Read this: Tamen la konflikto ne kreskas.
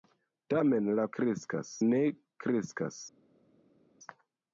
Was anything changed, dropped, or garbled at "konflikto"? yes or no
yes